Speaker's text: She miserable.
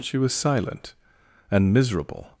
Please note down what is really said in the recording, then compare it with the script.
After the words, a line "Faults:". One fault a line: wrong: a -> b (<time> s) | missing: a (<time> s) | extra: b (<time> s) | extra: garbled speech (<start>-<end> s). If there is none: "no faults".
She was silent; and miserable.
Faults:
extra: was silent and (0.2 s)